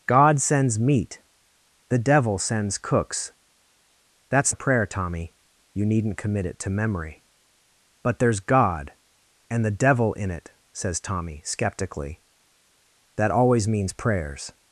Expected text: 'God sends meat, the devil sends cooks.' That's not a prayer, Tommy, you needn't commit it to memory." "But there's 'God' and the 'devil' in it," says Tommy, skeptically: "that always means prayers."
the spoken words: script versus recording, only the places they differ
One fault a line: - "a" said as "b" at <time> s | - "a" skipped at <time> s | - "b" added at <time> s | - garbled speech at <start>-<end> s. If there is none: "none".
- "not" skipped at 4.5 s